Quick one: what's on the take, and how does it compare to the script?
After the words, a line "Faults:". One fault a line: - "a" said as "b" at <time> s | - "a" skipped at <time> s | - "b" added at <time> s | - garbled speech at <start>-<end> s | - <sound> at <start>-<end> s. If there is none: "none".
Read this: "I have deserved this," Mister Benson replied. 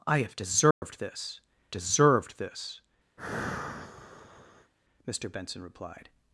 "I have deserved this deserved this," Mister Benson replied.
Faults:
- dropout at 0.7-0.8 s
- "deserved this" added at 1.7 s
- sigh at 3.2-4.7 s